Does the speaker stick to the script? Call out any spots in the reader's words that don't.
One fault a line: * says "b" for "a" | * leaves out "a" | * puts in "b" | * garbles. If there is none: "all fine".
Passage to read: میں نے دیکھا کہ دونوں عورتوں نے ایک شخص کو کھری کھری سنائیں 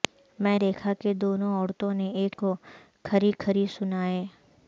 * leaves out "نے"
* leaves out "شخص"